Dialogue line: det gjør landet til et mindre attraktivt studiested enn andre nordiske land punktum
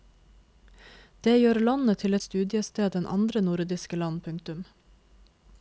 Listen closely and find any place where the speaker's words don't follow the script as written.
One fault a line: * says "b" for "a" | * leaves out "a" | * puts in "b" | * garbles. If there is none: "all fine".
* leaves out "et mindre attraktivt"